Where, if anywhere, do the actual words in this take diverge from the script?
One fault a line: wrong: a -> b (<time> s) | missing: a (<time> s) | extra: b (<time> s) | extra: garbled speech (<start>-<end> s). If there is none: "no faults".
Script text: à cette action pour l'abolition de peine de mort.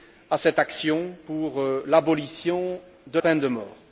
no faults